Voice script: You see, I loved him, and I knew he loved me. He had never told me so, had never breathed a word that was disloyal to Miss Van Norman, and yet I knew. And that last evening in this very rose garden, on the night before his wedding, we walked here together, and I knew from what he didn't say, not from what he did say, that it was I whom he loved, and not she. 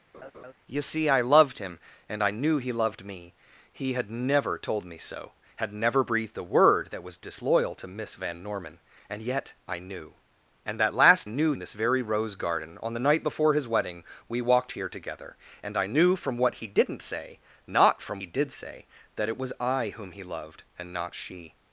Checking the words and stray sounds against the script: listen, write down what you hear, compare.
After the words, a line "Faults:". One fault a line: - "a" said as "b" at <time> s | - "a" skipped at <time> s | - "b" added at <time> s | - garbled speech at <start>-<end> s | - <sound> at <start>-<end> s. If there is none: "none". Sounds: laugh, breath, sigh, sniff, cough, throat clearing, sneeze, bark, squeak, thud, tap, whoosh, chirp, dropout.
You see, I loved him, and I knew he loved me. He had never told me so, had never breathed a word that was disloyal to Miss Van Norman, and yet I knew. And that last knew in this very rose garden, on the night before his wedding, we walked here together, and I knew from what he didn't say, not from he did say, that it was I whom he loved, and not she.
Faults:
- laugh at 0.1-0.5 s
- "evening" said as "knew" at 11.3 s
- "what" skipped at 18.2 s